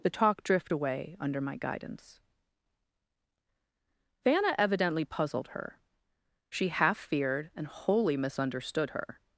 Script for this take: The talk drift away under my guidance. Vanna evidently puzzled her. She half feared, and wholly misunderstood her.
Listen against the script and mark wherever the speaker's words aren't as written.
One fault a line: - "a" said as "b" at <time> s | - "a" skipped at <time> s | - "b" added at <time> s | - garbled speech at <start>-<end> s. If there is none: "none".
none